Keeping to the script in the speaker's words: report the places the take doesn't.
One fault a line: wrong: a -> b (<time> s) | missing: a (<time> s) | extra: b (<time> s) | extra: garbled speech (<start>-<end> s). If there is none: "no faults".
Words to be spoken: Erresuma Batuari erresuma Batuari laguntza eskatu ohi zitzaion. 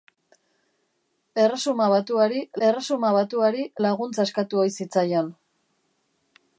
no faults